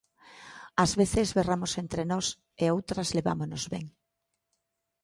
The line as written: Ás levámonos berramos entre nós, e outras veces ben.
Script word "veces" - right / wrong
wrong